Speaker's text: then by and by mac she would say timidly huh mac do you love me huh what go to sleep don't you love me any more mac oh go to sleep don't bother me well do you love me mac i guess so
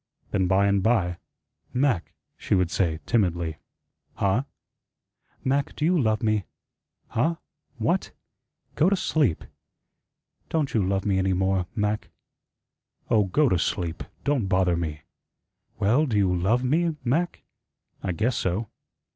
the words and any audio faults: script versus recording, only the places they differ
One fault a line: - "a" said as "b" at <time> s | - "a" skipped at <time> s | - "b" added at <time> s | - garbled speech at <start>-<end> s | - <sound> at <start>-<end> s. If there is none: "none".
none